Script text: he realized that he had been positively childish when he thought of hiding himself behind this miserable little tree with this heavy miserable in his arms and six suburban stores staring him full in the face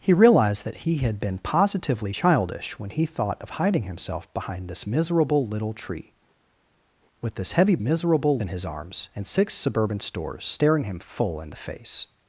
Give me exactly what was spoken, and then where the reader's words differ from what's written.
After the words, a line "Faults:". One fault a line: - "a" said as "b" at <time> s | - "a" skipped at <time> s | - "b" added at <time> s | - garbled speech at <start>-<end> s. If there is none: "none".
he realized that he had been positively childish when he thought of hiding himself behind this miserable little tree with this heavy miserable in his arms and six suburban stores staring him full in the face
Faults:
none